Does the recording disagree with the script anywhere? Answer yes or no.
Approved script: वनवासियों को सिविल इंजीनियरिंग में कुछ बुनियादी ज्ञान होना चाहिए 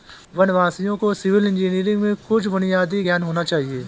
no